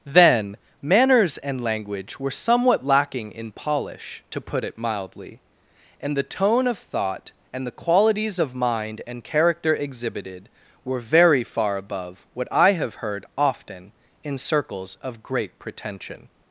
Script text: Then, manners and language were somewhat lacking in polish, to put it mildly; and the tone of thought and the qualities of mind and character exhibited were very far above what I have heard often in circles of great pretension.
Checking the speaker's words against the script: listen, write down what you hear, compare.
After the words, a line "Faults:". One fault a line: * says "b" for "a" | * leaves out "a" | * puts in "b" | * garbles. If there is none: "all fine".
Then, manners and language were somewhat lacking in polish, to put it mildly; and the tone of thought and the qualities of mind and character exhibited were very far above what I have heard often in circles of great pretension.
Faults:
all fine